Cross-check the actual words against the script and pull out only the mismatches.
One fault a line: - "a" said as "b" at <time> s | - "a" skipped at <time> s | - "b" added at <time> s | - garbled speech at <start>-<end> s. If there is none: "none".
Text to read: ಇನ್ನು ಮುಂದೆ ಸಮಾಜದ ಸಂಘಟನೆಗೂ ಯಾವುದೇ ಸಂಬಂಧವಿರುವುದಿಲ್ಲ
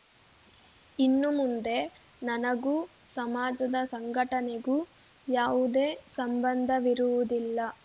- "ನನಗೂ" added at 2.2 s